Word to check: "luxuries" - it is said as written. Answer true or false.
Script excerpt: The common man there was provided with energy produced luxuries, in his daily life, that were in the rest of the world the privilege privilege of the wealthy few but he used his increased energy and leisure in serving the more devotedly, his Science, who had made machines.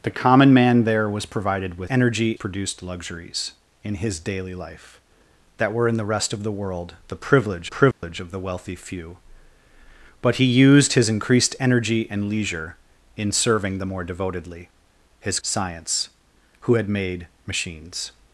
true